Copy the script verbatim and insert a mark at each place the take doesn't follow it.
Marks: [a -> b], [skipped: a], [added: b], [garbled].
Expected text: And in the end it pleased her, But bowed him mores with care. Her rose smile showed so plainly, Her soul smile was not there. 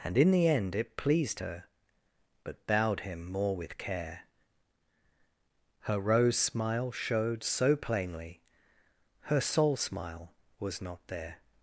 And in the end it pleased her, But bowed him [mores -> more] with care. Her rose smile showed so plainly, Her soul smile was not there.